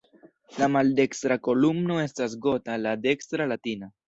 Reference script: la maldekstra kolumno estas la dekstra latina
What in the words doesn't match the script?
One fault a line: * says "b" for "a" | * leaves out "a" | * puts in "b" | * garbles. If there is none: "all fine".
* puts in "gota"